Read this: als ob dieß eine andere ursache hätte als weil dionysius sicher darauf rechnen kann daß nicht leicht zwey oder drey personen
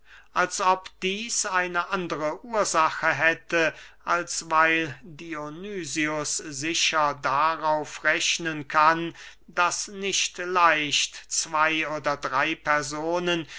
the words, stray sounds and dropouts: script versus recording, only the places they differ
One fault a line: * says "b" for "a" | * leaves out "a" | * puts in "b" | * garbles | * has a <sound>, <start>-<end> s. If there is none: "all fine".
all fine